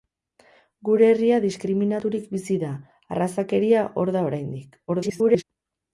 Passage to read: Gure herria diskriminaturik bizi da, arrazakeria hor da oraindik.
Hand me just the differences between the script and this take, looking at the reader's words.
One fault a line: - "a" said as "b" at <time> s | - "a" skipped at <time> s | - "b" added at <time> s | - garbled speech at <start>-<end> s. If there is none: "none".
- garbled speech at 4.9-5.4 s